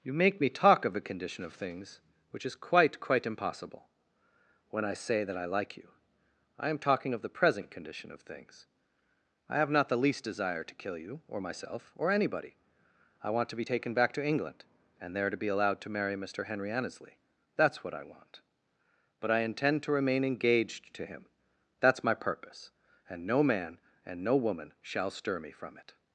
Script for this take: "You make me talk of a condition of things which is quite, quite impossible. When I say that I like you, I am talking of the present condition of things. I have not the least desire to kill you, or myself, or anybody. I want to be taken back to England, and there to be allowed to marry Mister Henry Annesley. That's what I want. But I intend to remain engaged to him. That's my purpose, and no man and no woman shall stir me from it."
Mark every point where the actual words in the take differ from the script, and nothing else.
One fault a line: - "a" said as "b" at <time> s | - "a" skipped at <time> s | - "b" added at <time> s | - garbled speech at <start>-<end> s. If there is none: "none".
none